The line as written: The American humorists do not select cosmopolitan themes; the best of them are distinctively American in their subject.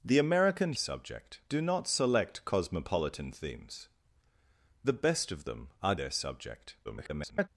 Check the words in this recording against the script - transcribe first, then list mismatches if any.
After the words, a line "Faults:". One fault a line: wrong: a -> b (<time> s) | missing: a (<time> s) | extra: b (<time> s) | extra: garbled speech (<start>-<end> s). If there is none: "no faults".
The American subject do not select cosmopolitan themes; the best of them are their subject. [garbled]
Faults:
wrong: humorists -> subject (0.7 s)
missing: distinctively American in (5.9 s)
extra: garbled speech (6.8-7.5 s)